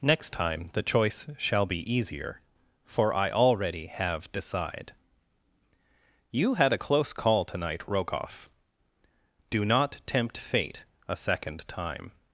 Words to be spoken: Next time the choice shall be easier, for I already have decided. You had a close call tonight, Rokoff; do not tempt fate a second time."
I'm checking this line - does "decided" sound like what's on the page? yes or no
no